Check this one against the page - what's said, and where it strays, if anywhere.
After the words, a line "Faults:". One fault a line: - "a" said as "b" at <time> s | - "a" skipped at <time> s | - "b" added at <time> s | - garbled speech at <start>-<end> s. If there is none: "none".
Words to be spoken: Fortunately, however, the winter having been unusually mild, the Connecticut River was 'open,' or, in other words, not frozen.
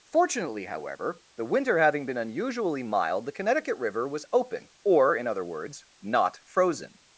Fortunately, however, the winter having been unusually mild, the Connecticut River was 'open,' or, in other words, not frozen.
Faults:
none